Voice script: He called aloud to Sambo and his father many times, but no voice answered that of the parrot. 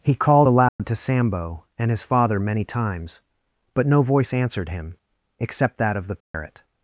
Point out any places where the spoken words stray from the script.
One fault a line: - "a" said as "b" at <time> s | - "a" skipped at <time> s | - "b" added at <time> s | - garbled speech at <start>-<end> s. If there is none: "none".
- "him except" added at 4.7 s